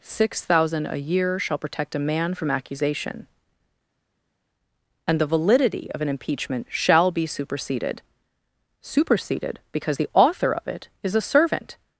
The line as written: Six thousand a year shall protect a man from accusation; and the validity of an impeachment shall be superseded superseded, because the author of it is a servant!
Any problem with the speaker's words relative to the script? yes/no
no